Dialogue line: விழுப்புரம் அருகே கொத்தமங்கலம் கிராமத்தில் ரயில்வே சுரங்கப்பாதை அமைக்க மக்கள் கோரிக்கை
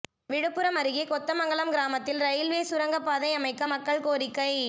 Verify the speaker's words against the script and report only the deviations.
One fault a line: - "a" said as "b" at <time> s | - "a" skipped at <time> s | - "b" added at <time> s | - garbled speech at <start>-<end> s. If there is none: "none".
none